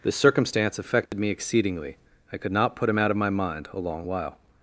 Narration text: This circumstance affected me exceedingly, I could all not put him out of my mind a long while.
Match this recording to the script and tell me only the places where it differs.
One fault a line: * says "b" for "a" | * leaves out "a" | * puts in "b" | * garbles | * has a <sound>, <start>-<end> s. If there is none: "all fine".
* has a dropout, 1.1-1.1 s
* leaves out "all"